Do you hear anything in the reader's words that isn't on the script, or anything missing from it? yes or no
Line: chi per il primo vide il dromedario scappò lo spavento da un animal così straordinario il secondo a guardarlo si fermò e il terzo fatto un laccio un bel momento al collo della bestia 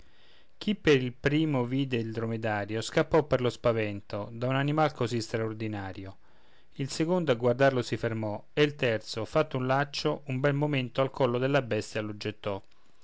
yes